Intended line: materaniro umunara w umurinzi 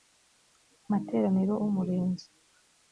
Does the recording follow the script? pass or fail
fail